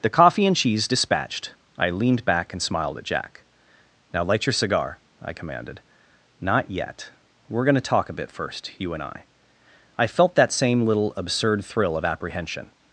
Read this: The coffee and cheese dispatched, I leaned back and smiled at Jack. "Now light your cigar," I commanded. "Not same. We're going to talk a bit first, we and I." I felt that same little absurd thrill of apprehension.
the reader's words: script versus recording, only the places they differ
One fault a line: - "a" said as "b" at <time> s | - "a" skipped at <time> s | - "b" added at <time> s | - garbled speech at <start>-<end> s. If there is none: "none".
- "same" said as "yet" at 6.7 s
- "we" said as "you" at 8.8 s